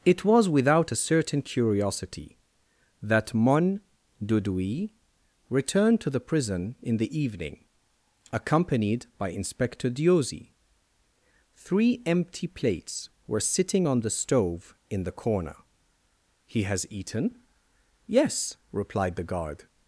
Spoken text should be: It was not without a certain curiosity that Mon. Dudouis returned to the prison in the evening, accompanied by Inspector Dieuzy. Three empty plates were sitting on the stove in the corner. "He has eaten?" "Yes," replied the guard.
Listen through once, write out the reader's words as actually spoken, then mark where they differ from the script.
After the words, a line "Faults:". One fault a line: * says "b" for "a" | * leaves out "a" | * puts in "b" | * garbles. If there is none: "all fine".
It was without a certain curiosity that Mon. Dudouis returned to the prison in the evening, accompanied by Inspector Dieuzy. Three empty plates were sitting on the stove in the corner. "He has eaten?" "Yes," replied the guard.
Faults:
* leaves out "not"